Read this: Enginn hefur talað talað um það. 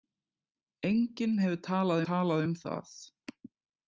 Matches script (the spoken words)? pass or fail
pass